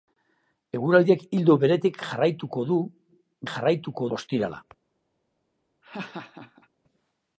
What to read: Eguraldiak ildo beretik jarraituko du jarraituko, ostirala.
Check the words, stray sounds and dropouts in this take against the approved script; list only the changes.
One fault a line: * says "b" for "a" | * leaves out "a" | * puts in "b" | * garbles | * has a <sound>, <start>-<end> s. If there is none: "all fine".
* has a laugh, 5.8-6.7 s